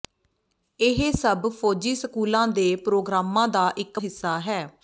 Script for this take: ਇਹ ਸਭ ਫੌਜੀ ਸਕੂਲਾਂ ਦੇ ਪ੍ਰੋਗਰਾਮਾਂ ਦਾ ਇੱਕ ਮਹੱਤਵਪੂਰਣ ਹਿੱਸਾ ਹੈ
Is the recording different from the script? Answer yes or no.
yes